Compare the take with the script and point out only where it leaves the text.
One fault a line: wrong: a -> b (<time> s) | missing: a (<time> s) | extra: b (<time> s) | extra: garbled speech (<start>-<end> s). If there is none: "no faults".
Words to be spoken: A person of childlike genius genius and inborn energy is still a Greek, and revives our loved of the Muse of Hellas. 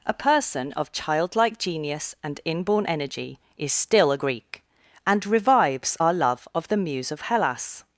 missing: genius (2.1 s)
wrong: loved -> love (6.1 s)